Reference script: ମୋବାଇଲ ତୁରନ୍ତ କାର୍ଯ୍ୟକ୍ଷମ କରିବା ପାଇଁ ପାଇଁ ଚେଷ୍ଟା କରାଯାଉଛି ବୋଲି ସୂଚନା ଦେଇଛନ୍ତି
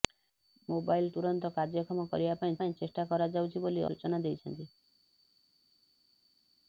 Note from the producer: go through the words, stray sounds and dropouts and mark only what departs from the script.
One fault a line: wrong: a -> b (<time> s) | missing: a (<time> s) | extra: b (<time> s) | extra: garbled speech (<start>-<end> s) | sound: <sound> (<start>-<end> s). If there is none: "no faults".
no faults